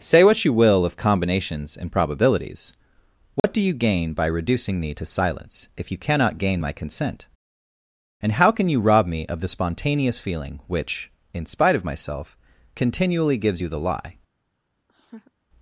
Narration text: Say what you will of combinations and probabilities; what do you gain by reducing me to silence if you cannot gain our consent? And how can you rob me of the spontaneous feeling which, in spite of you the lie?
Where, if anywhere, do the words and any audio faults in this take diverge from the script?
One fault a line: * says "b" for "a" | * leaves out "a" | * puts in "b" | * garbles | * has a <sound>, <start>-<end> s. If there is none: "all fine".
* has a dropout, 3.4-3.4 s
* says "my" for "our"
* puts in "myself continually gives"
* has a laugh, 14.9-15.3 s